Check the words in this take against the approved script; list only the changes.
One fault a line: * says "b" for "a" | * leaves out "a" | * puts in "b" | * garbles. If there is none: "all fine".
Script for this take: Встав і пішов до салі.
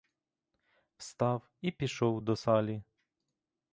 all fine